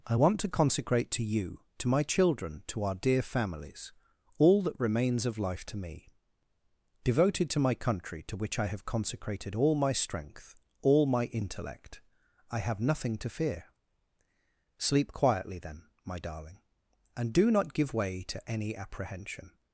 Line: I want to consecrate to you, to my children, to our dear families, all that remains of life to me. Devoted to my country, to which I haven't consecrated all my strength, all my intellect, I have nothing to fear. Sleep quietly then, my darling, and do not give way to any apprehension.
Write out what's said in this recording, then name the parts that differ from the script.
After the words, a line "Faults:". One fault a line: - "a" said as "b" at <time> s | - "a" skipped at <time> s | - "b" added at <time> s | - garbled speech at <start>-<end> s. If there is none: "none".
I want to consecrate to you, to my children, to our dear families, all that remains of life to me. Devoted to my country, to which I have consecrated all my strength, all my intellect, I have nothing to fear. Sleep quietly then, my darling, and do not give way to any apprehension.
Faults:
- "haven't" said as "have" at 8.7 s